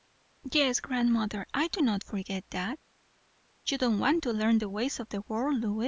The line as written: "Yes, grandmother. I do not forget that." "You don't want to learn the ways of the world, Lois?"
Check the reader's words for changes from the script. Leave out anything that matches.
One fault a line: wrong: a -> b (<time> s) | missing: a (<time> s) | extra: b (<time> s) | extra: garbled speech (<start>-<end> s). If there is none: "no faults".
no faults